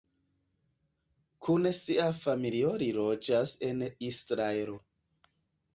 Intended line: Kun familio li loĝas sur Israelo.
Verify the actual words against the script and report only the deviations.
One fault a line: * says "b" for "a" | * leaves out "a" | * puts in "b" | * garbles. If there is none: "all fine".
* puts in "sia"
* says "en" for "sur"